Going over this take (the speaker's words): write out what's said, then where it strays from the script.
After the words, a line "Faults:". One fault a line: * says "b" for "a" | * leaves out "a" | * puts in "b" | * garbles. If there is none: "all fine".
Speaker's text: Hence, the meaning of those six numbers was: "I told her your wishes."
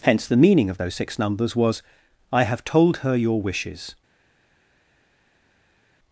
Hence, the meaning of those six numbers was: "I have told her your wishes."
Faults:
* puts in "have"